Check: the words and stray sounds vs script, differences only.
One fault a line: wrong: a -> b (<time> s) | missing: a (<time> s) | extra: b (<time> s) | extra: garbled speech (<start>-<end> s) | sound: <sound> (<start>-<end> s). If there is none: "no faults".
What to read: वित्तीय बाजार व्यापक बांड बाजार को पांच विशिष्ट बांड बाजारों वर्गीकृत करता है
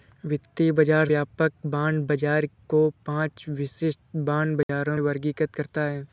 sound: dropout (4.6-4.7 s)